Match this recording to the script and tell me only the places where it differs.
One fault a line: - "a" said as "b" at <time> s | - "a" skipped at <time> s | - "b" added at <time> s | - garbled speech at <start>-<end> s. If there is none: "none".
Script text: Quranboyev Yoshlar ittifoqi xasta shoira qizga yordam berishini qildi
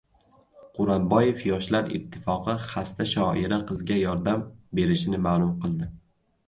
- "ma'lum" added at 5.3 s